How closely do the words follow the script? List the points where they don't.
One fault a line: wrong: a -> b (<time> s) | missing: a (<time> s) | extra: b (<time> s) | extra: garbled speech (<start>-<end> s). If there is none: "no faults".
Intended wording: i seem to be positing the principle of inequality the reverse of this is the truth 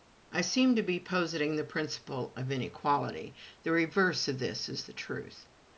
no faults